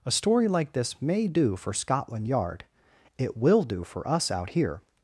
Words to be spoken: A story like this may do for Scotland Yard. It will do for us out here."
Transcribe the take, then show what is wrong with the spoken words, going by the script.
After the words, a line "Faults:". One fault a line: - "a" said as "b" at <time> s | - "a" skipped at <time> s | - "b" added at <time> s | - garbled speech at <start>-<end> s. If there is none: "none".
A story like this may do for Scotland Yard. It will do for us out here."
Faults:
none